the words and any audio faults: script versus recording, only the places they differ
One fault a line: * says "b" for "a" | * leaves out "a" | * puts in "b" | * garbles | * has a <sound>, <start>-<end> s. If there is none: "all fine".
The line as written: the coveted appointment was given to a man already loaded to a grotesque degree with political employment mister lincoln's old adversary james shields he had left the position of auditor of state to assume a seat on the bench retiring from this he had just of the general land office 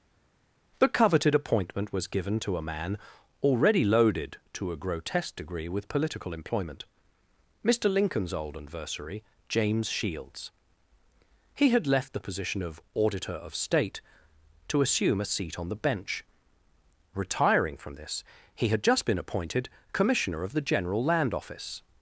* puts in "been appointed commissioner"